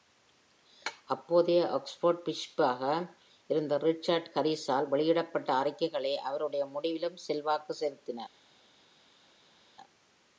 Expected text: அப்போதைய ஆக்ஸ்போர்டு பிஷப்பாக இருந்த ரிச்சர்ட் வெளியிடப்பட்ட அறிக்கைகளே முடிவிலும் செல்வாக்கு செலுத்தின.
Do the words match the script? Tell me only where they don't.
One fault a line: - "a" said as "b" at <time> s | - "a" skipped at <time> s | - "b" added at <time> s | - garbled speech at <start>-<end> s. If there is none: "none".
- "ஹாரிஸால்" added at 4.3 s
- "அவருடைய" added at 6.2 s